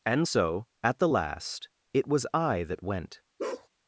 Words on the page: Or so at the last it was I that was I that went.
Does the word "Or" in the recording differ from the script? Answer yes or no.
yes